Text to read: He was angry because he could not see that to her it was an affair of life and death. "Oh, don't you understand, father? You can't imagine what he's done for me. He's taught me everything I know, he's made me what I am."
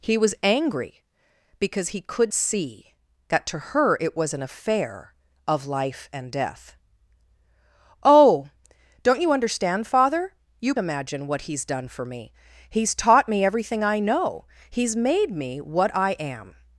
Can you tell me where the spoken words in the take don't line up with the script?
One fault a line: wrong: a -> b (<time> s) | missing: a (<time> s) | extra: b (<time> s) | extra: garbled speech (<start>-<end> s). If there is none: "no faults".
missing: not (2.3 s)
missing: can't (10.7 s)